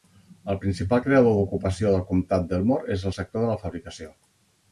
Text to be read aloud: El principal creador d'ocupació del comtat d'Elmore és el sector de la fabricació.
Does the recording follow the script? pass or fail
pass